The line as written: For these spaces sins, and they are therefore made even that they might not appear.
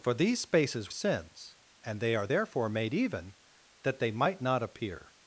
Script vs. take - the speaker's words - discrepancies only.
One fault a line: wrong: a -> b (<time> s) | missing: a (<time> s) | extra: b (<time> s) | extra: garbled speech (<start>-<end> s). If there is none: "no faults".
no faults